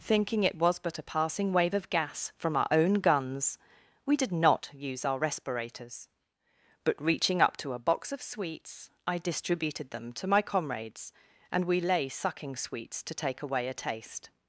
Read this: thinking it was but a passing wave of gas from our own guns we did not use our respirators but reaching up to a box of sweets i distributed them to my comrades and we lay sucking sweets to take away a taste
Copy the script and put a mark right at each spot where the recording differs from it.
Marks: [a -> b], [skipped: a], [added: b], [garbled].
thinking it was but a passing wave of gas from our own guns we did not use our respirators but reaching up to a box of sweets i distributed them to my comrades and we lay sucking sweets to take away a taste